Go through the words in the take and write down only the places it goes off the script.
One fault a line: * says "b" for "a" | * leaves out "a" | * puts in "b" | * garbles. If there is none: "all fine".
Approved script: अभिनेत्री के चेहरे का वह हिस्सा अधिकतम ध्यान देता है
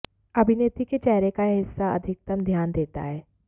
* says "यह" for "वह"